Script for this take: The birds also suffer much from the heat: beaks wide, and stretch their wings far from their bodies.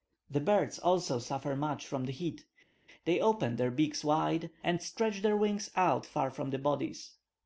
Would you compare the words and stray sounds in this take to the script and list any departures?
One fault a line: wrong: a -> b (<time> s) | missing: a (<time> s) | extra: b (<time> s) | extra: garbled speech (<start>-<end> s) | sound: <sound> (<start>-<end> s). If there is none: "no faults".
extra: they open their (3.0 s)
extra: out (5.8 s)